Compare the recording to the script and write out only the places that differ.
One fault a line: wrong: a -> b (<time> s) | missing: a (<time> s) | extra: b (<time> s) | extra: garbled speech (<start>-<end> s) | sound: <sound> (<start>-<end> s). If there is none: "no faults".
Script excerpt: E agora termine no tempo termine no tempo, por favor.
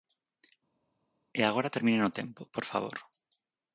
missing: termine no tempo (2.4 s)